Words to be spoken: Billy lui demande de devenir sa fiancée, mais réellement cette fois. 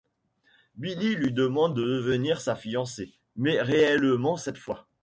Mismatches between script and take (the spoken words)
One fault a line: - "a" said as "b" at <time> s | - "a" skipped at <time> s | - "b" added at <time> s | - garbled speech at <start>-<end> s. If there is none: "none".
none